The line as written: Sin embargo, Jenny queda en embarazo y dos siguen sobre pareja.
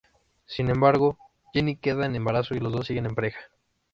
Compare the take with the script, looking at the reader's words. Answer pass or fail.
fail